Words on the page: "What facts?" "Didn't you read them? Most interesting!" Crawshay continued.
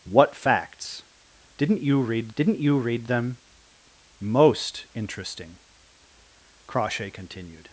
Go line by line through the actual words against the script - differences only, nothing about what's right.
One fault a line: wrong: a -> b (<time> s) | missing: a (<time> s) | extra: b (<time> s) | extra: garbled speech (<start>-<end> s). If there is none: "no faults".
extra: didn't you read (2.4 s)